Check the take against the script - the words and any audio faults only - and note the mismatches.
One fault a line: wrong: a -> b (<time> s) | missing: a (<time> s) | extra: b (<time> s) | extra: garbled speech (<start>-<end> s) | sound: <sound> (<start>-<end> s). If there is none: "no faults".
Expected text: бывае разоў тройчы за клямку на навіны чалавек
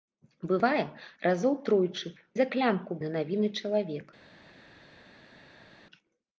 no faults